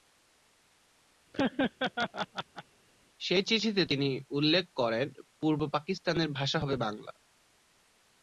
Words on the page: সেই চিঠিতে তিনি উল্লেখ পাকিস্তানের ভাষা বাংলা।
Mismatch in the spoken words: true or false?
true